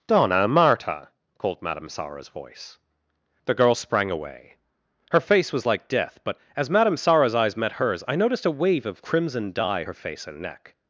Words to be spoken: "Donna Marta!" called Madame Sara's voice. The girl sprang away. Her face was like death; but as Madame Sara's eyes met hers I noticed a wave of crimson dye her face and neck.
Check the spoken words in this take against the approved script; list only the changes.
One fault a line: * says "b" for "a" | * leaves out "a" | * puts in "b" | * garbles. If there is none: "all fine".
all fine